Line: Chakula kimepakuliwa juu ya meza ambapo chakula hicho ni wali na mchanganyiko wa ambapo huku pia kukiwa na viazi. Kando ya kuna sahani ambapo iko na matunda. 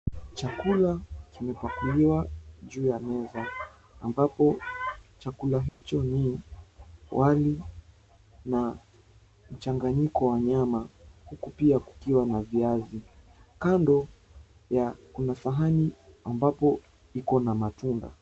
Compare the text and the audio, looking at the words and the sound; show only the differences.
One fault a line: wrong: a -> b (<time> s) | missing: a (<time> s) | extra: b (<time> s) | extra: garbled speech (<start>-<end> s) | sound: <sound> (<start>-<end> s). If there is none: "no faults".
sound: dropout (5.7-5.8 s)
wrong: ambapo -> nyama (10.4 s)